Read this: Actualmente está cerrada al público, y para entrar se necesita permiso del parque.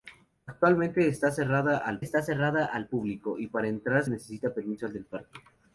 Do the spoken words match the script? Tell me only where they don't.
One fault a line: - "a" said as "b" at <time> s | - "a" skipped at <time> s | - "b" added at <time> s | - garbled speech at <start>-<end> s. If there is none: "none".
- "está cerrada al" added at 2.0 s
- "se" skipped at 4.0 s